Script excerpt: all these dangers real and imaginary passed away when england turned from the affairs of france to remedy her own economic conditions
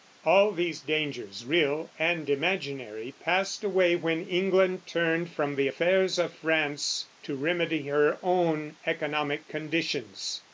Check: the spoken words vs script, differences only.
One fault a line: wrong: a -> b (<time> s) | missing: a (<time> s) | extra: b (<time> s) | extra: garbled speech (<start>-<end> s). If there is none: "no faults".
no faults